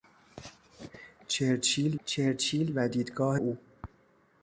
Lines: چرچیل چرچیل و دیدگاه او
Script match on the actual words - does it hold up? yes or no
yes